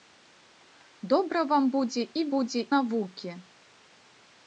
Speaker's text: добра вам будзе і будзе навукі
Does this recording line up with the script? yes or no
yes